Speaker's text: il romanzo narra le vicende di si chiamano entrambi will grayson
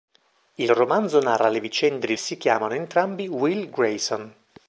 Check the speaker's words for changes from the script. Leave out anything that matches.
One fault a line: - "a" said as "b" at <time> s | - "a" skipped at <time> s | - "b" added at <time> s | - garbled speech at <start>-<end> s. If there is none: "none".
none